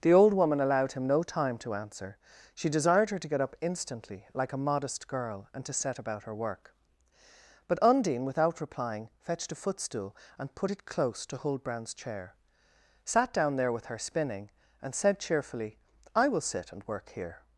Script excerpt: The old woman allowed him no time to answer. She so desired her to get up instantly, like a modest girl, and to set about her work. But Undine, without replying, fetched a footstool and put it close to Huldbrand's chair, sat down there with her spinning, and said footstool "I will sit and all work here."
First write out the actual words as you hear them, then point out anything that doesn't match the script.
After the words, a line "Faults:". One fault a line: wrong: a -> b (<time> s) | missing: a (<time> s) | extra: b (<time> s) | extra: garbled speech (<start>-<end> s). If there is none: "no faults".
The old woman allowed him no time to answer. She desired her to get up instantly, like a modest girl, and to set about her work. But Undine, without replying, fetched a footstool and put it close to Huldbrand's chair, sat down there with her spinning, and said cheerfully "I will sit and work here."
Faults:
missing: so (2.7 s)
wrong: footstool -> cheerfully (15.2 s)
missing: all (16.9 s)